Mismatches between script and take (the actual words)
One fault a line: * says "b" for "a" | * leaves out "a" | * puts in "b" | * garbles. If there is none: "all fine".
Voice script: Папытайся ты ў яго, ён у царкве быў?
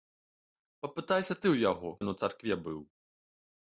all fine